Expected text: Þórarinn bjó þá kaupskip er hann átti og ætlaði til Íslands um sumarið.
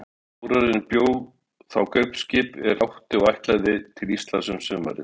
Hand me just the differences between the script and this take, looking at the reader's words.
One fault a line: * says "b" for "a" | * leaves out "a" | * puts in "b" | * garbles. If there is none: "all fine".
* leaves out "hann"